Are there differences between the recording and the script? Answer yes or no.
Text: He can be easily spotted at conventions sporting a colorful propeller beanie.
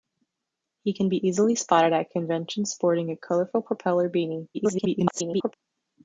yes